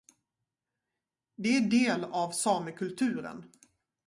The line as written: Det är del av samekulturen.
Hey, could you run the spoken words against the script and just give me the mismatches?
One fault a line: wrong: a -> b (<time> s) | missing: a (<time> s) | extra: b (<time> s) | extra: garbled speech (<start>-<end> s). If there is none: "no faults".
no faults